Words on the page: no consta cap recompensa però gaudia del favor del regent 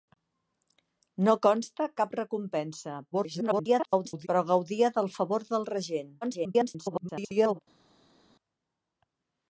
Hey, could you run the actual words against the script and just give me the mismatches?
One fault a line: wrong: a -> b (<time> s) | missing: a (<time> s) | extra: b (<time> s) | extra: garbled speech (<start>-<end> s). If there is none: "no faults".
extra: garbled speech (3.1-4.3 s)
extra: garbled speech (6.2-7.6 s)